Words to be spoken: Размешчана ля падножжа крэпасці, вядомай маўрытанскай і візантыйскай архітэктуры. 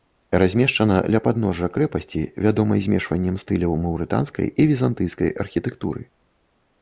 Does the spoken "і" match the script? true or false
true